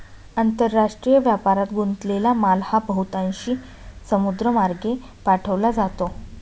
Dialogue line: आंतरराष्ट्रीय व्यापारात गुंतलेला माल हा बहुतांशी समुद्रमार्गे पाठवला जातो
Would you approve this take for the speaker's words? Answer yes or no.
yes